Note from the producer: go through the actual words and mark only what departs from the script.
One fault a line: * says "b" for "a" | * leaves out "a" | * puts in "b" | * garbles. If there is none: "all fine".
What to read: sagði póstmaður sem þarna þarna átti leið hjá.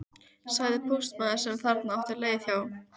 * leaves out "þarna"